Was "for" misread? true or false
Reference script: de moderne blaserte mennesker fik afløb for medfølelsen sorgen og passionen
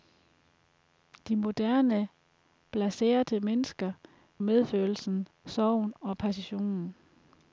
true